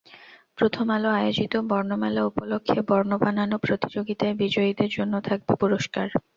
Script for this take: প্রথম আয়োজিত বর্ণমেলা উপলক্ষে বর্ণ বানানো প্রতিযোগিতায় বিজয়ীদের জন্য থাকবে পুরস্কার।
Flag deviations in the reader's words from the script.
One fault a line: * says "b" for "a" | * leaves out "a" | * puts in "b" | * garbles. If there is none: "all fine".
* puts in "আলো"